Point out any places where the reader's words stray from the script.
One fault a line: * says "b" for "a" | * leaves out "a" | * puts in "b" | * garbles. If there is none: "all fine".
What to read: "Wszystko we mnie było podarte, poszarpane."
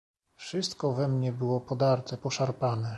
all fine